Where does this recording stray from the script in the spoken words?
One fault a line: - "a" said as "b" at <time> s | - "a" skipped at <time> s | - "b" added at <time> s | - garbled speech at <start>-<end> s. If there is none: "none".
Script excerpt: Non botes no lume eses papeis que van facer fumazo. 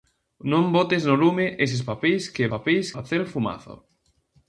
- "van" said as "papeis" at 2.5 s